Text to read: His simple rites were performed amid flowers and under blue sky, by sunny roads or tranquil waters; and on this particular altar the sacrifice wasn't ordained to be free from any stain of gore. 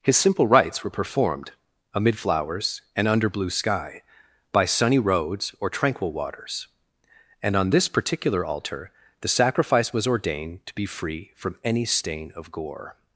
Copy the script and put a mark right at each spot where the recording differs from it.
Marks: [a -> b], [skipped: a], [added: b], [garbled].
His simple rites were performed amid flowers and under blue sky, by sunny roads or tranquil waters; and on this particular altar the sacrifice [wasn't -> was] ordained to be free from any stain of gore.